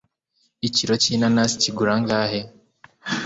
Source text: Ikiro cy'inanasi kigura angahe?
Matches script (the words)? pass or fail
pass